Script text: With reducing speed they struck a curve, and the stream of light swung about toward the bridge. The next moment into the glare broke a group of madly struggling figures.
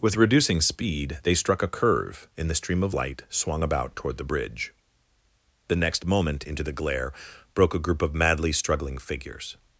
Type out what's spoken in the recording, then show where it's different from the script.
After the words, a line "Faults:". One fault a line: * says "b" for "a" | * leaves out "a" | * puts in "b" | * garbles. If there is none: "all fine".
With reducing speed they struck a curve, in the stream of light swung about toward the bridge. The next moment into the glare broke a group of madly struggling figures.
Faults:
* says "in" for "and"